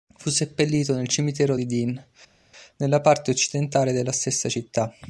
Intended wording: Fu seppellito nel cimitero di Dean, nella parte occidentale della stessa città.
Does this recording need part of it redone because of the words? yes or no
no